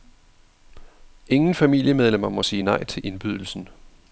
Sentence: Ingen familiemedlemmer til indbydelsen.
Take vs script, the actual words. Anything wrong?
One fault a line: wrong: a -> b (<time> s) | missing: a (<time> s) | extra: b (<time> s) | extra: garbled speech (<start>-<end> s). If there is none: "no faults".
extra: må sige nej (2.3 s)